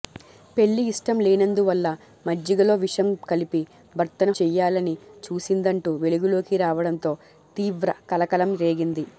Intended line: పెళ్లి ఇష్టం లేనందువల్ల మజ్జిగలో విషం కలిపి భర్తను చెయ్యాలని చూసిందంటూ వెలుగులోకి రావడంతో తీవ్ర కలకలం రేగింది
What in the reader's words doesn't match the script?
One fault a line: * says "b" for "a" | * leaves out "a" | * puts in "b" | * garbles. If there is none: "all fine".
all fine